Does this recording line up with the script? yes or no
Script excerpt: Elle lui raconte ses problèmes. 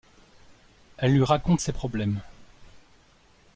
yes